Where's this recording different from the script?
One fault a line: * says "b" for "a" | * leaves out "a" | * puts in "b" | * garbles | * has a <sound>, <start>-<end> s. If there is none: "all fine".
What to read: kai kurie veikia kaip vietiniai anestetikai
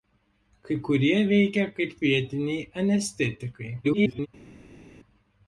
* garbles